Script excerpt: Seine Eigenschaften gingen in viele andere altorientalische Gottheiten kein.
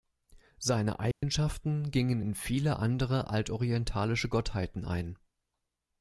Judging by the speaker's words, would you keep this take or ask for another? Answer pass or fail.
fail